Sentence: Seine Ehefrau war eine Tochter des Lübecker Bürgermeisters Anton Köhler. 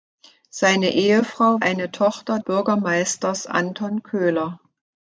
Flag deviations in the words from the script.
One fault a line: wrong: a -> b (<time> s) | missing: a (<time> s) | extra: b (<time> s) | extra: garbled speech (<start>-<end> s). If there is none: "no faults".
missing: war (1.6 s)
missing: des Lübecker (2.4 s)